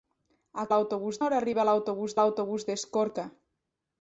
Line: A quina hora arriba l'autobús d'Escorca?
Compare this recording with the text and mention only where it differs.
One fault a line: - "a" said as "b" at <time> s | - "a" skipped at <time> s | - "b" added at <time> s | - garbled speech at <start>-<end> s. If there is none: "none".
- "quina" said as "l'autobús" at 0.7 s
- "l'autobús" added at 2.2 s